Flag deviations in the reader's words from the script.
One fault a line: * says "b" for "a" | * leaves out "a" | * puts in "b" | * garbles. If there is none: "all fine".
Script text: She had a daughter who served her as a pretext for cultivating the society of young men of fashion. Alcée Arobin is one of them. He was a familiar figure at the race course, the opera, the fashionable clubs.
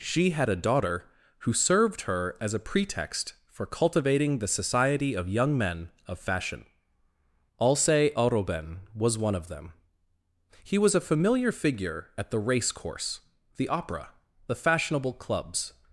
* says "was" for "is"